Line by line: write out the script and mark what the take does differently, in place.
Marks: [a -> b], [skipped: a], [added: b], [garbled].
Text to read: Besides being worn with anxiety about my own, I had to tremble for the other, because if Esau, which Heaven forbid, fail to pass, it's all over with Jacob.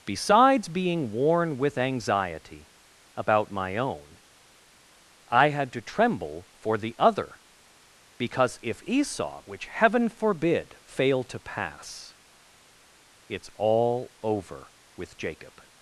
Besides being worn with anxiety about my own, I had to tremble for the other, because if Esau, which Heaven forbid, fail to pass, it's all over with Jacob.